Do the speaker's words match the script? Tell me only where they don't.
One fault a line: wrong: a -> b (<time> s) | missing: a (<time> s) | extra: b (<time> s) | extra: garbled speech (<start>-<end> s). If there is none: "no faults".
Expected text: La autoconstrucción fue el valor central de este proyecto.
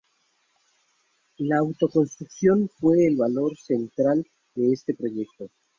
no faults